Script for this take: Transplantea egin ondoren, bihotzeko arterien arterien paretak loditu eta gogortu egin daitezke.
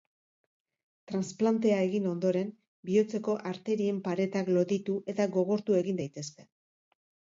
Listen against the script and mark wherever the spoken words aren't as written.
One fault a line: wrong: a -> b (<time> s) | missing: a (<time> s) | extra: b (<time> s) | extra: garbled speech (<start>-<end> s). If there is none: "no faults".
missing: arterien (4.0 s)